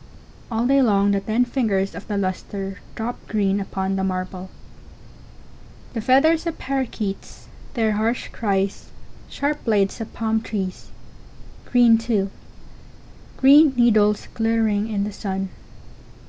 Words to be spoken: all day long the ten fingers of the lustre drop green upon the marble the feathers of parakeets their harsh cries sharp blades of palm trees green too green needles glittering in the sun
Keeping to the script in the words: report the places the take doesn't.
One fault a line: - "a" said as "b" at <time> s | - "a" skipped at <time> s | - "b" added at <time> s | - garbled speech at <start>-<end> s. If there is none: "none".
none